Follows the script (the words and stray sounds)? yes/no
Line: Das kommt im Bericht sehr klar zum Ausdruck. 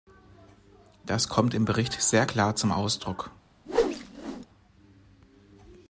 no